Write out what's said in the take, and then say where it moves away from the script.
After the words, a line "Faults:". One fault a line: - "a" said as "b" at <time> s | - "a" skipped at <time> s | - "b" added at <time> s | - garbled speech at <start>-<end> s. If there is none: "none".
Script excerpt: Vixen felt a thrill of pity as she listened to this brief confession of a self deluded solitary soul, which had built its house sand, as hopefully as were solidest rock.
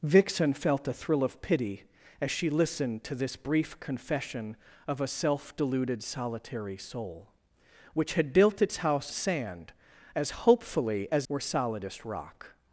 Vixen felt a thrill of pity as she listened to this brief confession of a self deluded solitary soul, which had built its house sand, as hopefully as were solidest rock.
Faults:
none